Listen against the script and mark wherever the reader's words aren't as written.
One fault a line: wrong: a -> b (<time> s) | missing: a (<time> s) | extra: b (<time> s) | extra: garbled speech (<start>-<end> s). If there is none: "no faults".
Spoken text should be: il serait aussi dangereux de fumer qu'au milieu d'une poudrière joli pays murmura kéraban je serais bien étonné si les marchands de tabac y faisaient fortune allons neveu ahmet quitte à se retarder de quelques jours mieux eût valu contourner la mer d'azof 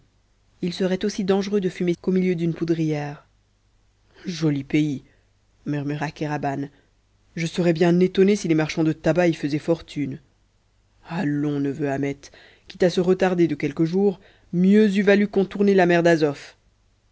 no faults